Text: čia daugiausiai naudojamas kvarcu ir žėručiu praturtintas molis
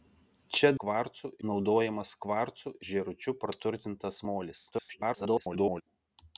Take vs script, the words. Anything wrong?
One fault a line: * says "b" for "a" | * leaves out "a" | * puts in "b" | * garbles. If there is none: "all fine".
* says "kvarcu" for "daugiausiai"
* leaves out "ir"
* garbles